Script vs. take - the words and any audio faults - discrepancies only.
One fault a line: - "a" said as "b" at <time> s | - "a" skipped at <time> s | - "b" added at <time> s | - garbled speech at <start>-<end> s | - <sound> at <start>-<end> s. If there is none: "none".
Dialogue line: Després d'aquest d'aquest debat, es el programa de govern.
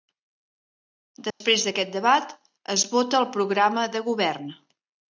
- dropout at 1.3-1.4 s
- "d'aquest" skipped at 1.9 s
- "vota" added at 2.9 s